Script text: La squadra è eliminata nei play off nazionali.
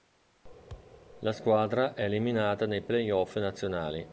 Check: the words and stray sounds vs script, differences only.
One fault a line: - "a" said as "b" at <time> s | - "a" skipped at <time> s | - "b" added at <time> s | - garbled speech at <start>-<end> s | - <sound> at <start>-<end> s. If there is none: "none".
- thud at 0.7-1.0 s